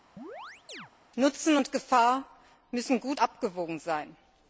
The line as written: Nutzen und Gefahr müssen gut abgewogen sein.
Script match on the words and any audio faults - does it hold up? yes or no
no